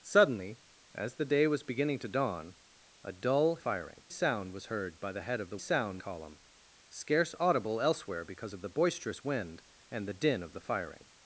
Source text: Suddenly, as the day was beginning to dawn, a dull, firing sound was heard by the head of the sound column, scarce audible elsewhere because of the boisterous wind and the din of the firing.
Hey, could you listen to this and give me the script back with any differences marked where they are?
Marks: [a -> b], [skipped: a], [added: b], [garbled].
Suddenly, as the day was beginning to dawn, a dull, firing sound was heard by the head of the sound column, scarce audible elsewhere because of the boisterous wind and the din of the firing.